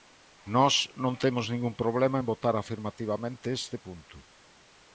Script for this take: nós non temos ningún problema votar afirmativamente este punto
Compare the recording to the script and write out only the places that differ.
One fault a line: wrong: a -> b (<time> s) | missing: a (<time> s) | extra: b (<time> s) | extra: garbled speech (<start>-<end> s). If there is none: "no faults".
extra: en (2.2 s)